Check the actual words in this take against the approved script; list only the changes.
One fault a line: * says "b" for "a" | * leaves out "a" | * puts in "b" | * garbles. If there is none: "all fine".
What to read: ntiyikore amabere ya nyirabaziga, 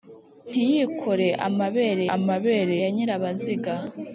* puts in "amabere"